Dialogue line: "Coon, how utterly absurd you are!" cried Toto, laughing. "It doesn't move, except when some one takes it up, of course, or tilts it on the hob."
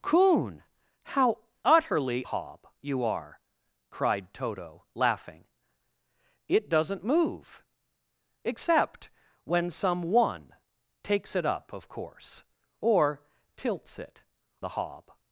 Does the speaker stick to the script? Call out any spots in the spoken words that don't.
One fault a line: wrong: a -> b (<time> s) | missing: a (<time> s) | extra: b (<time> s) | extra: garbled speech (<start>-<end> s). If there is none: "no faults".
wrong: absurd -> hob (2.3 s)
missing: on (14.2 s)